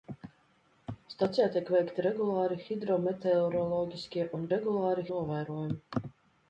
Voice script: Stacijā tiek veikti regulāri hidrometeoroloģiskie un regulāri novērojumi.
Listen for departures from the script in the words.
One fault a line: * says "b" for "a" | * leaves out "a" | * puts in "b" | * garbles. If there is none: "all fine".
all fine